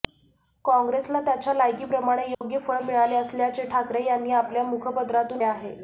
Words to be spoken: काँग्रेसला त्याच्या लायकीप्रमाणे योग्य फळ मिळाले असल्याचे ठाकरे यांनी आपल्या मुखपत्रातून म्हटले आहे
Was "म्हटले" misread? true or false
true